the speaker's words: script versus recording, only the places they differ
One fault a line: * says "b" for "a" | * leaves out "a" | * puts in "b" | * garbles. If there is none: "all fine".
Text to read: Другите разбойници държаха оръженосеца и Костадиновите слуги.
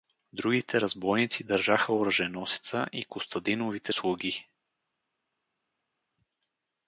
all fine